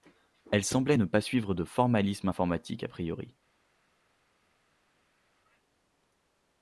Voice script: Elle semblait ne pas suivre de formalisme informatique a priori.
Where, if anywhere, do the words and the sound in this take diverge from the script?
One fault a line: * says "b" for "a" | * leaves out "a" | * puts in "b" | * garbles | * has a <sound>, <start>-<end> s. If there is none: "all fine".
all fine